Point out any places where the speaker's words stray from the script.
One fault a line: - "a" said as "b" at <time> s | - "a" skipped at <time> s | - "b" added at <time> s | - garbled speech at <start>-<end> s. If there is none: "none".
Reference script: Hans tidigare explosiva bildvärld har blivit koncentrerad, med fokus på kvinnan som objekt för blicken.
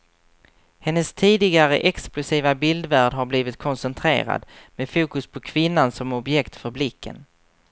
- "Hans" said as "Hennes" at 0.8 s